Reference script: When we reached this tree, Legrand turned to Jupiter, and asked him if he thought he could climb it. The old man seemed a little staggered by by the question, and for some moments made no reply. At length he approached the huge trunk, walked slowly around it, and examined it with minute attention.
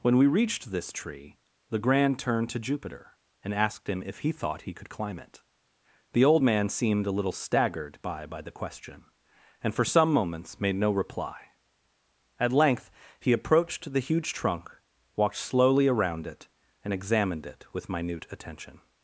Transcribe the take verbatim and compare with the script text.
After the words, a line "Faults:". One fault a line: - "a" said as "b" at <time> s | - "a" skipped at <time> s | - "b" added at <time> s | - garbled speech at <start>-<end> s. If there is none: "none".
When we reached this tree, Legrand turned to Jupiter, and asked him if he thought he could climb it. The old man seemed a little staggered by by the question, and for some moments made no reply. At length he approached the huge trunk, walked slowly around it, and examined it with minute attention.
Faults:
none